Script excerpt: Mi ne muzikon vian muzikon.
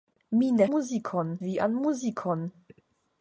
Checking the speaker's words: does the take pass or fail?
pass